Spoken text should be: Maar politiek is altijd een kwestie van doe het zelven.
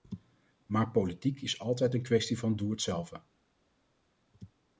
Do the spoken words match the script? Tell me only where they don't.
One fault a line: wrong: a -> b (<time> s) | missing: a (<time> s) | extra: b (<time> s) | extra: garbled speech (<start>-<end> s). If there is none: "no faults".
no faults